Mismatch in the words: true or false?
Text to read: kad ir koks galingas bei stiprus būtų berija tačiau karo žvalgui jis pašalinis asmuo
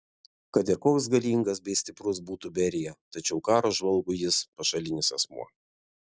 false